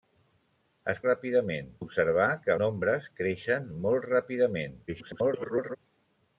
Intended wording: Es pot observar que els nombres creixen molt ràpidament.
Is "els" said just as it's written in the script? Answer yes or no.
no